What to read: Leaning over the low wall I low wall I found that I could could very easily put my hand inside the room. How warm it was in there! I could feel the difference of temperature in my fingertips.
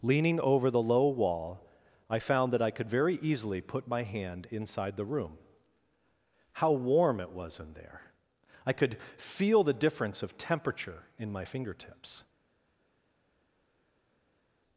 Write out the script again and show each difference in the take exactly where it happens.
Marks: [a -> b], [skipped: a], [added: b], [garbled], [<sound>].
Leaning over the low wall I [skipped: low wall I] found that I could [skipped: could] very easily put my hand inside the room. How warm it was in there! I could feel the difference of temperature in my fingertips.